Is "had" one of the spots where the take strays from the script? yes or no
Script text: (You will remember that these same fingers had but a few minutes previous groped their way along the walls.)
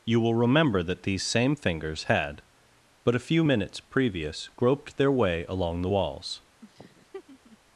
no